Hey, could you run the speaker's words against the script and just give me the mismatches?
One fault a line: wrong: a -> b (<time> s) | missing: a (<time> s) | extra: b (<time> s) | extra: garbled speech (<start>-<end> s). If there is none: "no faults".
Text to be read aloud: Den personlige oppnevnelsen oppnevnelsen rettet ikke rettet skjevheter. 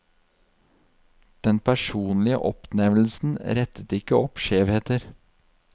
missing: oppnevnelsen (3.4 s)
wrong: rettet -> opp (4.2 s)